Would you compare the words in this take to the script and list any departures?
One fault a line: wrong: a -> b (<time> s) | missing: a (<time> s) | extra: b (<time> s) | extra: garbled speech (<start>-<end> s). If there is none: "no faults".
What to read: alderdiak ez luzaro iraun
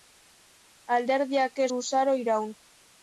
no faults